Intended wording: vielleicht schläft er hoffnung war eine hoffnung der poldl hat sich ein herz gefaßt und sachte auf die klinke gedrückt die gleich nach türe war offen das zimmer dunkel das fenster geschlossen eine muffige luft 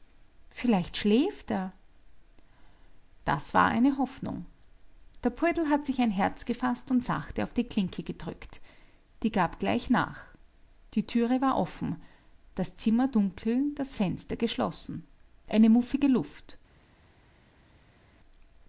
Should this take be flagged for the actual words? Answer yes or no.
yes